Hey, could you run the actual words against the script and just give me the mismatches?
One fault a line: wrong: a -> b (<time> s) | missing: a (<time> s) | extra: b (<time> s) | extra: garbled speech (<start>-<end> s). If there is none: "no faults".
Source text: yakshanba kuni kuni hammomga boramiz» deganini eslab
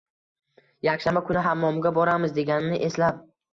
missing: kuni (1.4 s)